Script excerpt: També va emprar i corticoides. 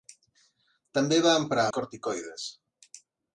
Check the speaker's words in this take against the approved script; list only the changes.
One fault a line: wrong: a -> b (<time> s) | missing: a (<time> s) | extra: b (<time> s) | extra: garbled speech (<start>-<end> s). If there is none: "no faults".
no faults